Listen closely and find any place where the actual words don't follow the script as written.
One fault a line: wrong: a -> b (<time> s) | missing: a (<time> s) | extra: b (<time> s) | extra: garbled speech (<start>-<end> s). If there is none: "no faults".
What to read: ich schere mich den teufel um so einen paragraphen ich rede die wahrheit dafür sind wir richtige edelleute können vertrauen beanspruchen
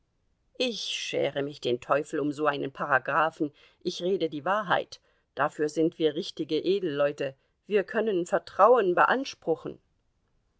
extra: wir (7.7 s)